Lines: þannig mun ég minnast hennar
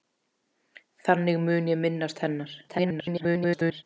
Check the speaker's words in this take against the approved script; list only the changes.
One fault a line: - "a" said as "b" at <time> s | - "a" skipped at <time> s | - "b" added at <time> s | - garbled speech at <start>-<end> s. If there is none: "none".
- garbled speech at 2.7-3.8 s